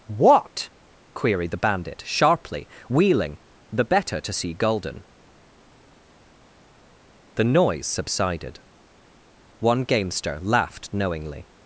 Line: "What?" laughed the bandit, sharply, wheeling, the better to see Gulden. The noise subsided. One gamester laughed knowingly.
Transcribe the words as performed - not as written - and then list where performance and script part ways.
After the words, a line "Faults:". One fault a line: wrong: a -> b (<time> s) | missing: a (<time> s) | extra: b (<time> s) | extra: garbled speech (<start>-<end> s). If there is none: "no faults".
"What?" queried the bandit, sharply, wheeling, the better to see Gulden. The noise subsided. One gamester laughed knowingly.
Faults:
wrong: laughed -> queried (1.1 s)